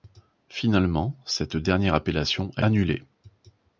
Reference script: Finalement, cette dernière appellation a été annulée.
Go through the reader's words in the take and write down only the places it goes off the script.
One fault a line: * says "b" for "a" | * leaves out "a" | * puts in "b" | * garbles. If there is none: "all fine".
* leaves out "été"